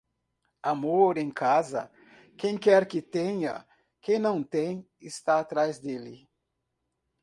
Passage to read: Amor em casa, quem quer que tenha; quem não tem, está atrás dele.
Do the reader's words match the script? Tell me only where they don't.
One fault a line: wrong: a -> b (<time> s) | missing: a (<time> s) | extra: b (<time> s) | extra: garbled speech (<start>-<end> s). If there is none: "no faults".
no faults